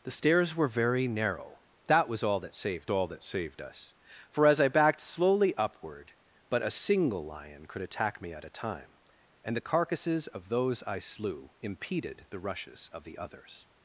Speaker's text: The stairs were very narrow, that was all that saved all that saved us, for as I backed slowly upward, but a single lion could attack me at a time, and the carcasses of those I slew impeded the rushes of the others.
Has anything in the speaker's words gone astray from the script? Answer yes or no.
no